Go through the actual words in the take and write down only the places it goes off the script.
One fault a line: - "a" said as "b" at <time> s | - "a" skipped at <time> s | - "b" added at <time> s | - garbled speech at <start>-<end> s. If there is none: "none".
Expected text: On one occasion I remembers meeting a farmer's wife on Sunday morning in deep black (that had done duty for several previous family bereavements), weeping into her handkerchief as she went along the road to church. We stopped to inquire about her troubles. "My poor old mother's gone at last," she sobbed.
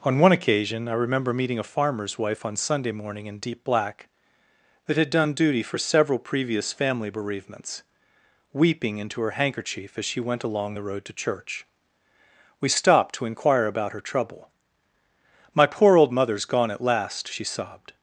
- "remembers" said as "remember" at 0.9 s
- "troubles" said as "trouble" at 14.0 s